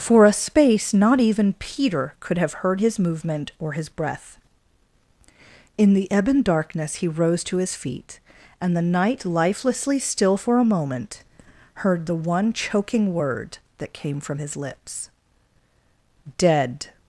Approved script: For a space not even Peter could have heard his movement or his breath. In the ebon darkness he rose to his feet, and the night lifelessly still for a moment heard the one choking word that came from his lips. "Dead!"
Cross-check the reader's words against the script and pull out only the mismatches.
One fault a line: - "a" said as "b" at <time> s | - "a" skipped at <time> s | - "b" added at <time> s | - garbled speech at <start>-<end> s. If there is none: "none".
none